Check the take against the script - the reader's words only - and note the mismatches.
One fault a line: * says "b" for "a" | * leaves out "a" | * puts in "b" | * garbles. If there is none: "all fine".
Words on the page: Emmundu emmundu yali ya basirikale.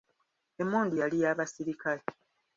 * leaves out "emmundu"